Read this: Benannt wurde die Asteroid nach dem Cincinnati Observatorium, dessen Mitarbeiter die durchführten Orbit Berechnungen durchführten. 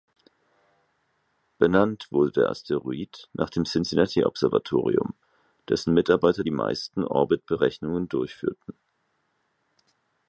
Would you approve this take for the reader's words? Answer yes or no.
no